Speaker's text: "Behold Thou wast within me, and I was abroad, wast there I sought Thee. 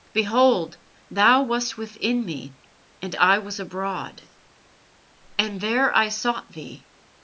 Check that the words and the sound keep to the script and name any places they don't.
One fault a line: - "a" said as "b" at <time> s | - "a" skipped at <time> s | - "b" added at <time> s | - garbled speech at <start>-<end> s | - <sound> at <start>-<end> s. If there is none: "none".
- "wast" said as "and" at 5.4 s